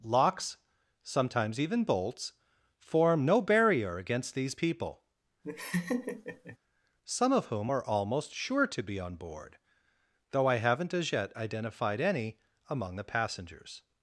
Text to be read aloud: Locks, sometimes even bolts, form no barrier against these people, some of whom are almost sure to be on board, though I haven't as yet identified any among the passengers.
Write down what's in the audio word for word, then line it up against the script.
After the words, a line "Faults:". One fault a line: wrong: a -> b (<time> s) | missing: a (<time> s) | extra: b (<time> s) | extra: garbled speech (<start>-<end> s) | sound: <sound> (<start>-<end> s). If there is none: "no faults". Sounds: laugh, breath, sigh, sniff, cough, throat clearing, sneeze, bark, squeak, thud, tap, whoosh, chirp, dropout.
Locks, sometimes even bolts, form no barrier against these people, some of whom are almost sure to be on board, though I haven't as yet identified any among the passengers.
Faults:
sound: laugh (5.4-6.6 s)